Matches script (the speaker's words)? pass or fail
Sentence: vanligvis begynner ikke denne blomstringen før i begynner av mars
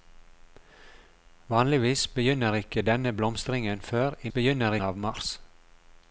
pass